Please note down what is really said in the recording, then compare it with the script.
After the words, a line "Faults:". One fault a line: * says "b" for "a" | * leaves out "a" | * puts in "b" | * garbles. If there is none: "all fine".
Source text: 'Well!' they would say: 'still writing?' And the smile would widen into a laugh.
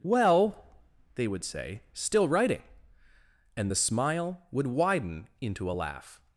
'Well!' they would say: 'still writing?' And the smile would widen into a laugh.
Faults:
all fine